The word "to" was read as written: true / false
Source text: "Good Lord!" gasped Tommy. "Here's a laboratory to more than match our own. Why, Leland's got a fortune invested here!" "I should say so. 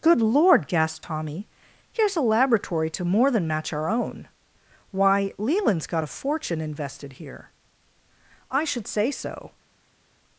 true